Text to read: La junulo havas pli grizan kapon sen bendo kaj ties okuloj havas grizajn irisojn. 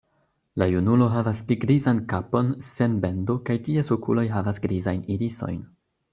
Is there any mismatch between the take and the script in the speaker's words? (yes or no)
no